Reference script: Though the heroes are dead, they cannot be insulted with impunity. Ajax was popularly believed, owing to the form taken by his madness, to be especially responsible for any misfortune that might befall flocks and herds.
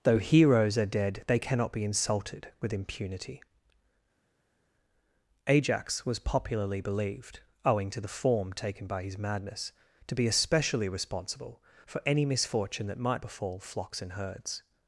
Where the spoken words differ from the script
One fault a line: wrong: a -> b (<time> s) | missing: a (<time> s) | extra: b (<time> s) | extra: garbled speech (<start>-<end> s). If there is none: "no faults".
missing: the (0.2 s)